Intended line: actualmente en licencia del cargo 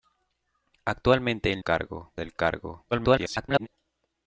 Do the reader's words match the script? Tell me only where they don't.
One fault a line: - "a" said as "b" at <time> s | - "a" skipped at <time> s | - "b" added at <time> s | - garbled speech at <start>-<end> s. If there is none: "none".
- "licencia" said as "cargo" at 1.6 s
- garbled speech at 2.9-3.7 s